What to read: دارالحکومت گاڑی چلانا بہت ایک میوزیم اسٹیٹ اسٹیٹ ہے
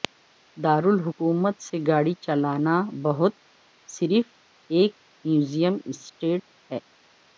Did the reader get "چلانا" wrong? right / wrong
right